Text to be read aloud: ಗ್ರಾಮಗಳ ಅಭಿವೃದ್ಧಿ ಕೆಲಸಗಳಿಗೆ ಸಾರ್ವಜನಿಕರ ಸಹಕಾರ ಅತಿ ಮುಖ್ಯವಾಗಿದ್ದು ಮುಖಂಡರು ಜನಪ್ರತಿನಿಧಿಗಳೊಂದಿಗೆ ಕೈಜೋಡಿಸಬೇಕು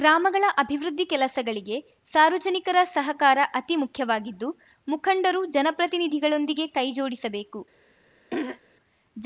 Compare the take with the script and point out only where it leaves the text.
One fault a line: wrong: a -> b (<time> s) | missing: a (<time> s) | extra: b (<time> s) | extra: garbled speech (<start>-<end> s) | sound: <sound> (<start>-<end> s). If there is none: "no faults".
sound: throat clearing (8.3-8.6 s)